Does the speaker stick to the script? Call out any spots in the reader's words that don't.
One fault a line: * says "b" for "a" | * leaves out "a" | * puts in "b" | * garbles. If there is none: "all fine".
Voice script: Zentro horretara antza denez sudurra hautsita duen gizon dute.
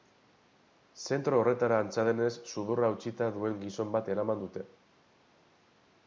* puts in "bat eraman"